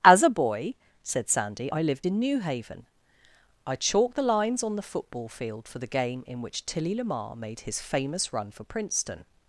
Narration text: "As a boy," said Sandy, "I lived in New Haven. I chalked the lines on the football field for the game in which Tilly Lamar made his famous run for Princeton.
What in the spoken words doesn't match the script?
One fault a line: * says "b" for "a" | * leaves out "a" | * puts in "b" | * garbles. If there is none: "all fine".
all fine